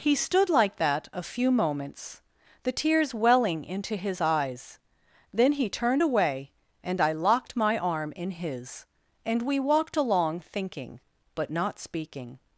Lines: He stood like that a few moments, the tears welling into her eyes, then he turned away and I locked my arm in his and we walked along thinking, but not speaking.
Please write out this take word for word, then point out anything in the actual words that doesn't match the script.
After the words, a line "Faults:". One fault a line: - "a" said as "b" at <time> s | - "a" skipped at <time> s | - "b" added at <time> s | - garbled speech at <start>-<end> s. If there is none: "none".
He stood like that a few moments, the tears welling into his eyes, then he turned away and I locked my arm in his and we walked along thinking, but not speaking.
Faults:
- "her" said as "his" at 4.0 s